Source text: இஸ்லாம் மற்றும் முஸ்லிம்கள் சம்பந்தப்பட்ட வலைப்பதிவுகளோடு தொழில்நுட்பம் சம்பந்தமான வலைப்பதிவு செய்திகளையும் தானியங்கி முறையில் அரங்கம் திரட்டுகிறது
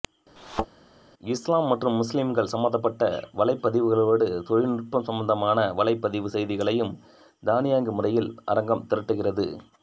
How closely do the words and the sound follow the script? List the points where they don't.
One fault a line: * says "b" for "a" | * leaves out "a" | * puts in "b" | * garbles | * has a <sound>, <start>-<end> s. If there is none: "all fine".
* has a thud, 0.4-0.7 s